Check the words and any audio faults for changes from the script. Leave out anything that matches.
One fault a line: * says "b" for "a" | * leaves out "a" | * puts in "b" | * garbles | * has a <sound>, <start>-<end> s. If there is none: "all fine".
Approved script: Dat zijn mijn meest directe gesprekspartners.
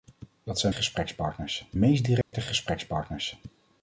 * says "gesprekspartners" for "mijn"
* has a dropout, 2.2-2.3 s